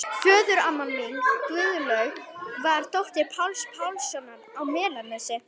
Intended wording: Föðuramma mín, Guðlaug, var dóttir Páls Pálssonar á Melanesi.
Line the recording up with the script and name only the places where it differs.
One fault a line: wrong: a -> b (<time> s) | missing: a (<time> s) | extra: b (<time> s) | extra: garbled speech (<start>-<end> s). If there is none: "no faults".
no faults